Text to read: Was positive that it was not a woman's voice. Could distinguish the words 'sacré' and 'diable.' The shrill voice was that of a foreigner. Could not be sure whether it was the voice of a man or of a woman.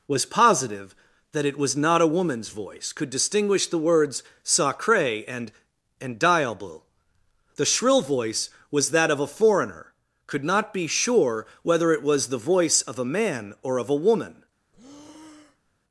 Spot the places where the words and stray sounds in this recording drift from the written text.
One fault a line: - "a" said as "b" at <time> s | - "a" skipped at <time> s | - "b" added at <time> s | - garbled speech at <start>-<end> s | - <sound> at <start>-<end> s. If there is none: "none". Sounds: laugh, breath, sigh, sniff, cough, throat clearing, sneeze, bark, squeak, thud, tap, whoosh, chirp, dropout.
- "and" added at 6.0 s
- breath at 14.7-15.8 s